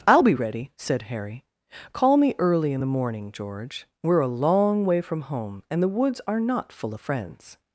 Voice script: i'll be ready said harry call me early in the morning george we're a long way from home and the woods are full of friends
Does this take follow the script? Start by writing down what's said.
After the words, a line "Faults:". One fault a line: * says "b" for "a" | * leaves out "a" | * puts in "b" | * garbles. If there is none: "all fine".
i'll be ready said harry call me early in the morning george we're a long way from home and the woods are not full of friends
Faults:
* puts in "not"